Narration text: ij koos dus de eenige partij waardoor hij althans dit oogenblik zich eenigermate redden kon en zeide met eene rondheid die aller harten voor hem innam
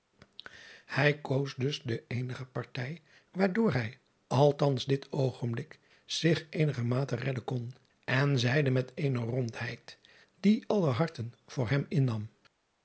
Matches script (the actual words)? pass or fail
pass